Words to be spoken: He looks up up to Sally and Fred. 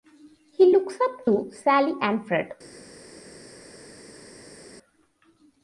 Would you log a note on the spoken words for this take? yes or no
yes